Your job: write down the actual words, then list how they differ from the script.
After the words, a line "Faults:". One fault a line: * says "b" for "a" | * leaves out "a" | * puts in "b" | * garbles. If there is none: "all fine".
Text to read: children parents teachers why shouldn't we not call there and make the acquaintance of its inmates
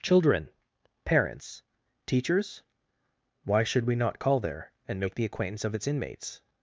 children parents teachers why should we not call there and make the acquaintance of its inmates
Faults:
* says "should" for "shouldn't"